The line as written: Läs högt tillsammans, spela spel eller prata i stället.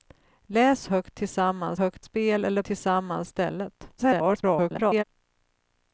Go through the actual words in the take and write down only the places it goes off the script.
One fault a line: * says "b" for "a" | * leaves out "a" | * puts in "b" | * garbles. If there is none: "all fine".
* says "högt" for "spela"
* says "tillsammans" for "prata"
* garbles